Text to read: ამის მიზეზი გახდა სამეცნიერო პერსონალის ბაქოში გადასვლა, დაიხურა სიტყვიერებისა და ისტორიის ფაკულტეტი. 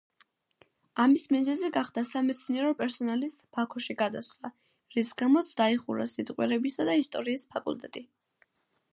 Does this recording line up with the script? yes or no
no